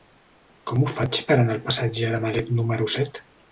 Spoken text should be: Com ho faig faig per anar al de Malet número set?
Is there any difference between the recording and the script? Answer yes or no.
yes